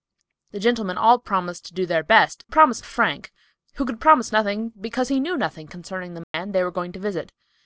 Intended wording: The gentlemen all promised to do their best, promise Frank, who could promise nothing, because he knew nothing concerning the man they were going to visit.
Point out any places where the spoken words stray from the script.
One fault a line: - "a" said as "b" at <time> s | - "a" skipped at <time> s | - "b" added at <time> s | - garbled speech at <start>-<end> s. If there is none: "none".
none